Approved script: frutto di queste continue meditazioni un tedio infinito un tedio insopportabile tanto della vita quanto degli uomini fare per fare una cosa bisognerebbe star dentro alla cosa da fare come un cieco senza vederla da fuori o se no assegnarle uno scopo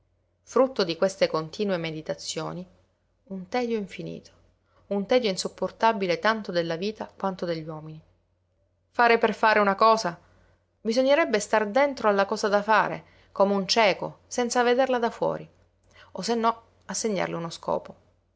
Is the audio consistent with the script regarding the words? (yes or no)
yes